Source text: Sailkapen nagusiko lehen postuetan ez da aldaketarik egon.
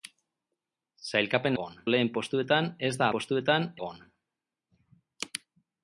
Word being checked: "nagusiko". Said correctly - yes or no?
no